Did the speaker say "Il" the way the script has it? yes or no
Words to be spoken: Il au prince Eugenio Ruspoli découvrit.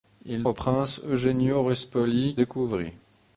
yes